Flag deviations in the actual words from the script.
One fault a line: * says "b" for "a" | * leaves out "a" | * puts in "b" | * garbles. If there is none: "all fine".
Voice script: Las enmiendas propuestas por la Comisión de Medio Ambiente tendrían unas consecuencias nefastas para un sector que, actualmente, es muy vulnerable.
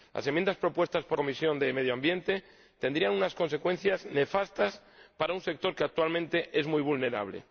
* leaves out "la"